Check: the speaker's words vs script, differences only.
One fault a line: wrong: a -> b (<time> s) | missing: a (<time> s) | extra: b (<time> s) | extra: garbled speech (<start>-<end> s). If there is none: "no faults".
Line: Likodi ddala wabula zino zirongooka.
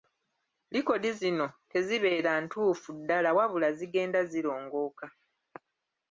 extra: zino tezibeera ntuufu (1.2 s)
wrong: zino -> zigenda (3.8 s)